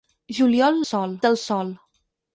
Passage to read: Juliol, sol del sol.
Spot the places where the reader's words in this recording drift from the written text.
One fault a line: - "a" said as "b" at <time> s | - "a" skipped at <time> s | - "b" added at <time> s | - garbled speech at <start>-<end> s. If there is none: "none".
none